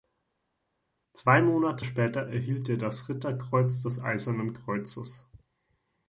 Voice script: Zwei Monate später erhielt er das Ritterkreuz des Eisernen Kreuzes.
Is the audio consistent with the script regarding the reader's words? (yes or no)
yes